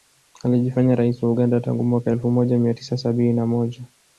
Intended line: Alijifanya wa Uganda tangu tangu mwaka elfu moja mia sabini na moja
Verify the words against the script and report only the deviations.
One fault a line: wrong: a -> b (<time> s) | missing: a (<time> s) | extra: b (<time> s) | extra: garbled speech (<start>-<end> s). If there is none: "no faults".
extra: rais (0.9 s)
missing: tangu (1.8 s)
extra: tisa (2.7 s)